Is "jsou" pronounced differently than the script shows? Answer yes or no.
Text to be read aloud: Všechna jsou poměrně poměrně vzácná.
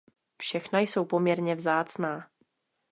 no